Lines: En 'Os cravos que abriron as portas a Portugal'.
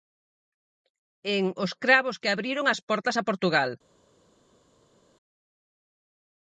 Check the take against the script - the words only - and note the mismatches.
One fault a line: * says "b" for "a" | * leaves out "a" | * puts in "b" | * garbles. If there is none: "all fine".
all fine